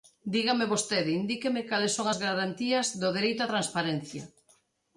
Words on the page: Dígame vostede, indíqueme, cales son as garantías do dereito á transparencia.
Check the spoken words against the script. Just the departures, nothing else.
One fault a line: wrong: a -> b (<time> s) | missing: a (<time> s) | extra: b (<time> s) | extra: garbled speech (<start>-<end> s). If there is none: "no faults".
no faults